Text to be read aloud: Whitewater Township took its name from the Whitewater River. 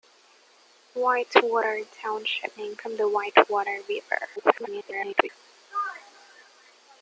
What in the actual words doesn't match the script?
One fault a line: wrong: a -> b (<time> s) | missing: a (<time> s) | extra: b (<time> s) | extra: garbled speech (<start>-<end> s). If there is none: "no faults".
missing: took its (2.5 s)
extra: garbled speech (4.4-5.3 s)